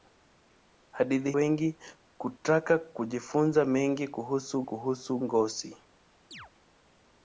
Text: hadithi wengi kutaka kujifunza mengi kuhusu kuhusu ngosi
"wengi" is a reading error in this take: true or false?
false